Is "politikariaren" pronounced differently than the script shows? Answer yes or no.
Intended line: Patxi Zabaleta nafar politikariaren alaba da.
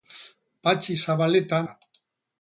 yes